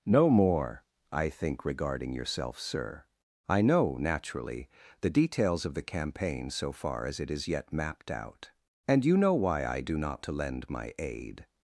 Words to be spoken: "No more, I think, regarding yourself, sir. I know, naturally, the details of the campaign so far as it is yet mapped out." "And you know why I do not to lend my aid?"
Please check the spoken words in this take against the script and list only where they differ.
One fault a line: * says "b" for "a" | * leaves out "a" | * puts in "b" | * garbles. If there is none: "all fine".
all fine